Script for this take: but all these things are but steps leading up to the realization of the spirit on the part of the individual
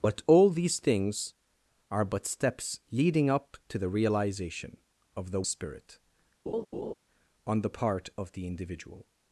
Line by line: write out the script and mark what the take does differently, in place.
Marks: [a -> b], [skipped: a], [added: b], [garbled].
but all these things are but steps leading up to the realization of the spirit on the part of the individual